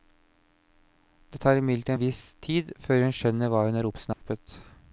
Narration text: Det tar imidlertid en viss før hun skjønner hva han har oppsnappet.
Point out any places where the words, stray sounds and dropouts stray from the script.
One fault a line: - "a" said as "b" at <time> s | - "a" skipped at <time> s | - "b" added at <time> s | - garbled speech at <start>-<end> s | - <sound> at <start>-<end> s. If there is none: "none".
- "tid" added at 2.4 s
- "han" said as "hun" at 3.7 s
- dropout at 4.1-4.2 s